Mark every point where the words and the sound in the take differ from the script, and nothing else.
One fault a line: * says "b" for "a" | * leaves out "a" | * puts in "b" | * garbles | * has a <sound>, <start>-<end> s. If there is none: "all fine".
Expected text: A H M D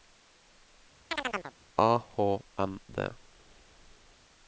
* has a chirp, 1.1-1.5 s